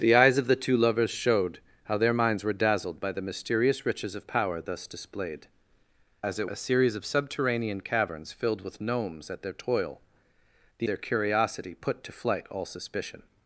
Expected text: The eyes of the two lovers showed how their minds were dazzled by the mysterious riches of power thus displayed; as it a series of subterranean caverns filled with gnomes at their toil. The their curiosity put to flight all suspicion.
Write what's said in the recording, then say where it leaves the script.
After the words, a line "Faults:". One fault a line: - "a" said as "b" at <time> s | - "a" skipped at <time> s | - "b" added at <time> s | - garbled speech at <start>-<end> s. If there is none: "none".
The eyes of the two lovers showed how their minds were dazzled by the mysterious riches of power thus displayed; as it a series of subterranean caverns filled with gnomes at their toil. The their curiosity put to flight all suspicion.
Faults:
none